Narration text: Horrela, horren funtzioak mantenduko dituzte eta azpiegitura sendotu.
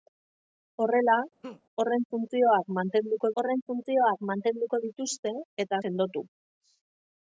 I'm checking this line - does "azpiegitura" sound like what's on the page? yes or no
no